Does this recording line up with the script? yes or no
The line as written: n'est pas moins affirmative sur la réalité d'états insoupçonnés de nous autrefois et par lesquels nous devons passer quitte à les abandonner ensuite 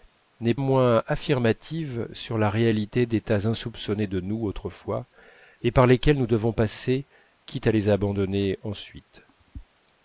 no